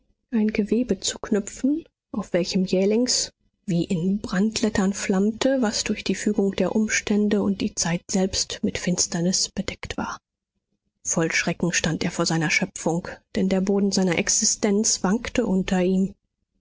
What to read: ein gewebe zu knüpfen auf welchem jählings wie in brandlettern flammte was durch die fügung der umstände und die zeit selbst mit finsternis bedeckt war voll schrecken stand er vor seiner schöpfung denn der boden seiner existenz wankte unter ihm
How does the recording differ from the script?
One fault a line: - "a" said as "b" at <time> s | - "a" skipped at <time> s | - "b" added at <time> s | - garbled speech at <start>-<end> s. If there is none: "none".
none